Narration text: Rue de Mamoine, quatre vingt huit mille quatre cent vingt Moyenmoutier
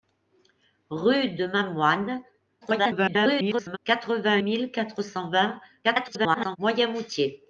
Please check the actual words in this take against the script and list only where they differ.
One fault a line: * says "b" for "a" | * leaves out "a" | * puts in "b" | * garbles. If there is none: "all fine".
* garbles
* leaves out "huit"
* garbles